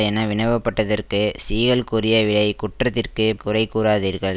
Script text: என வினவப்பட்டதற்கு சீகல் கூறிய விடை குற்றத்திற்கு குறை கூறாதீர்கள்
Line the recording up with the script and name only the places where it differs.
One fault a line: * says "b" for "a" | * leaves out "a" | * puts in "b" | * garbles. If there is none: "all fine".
all fine